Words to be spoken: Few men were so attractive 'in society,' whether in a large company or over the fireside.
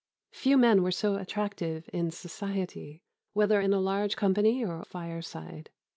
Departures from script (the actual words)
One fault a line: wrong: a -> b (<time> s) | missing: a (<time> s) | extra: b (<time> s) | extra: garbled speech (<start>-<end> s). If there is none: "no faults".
missing: over the (4.8 s)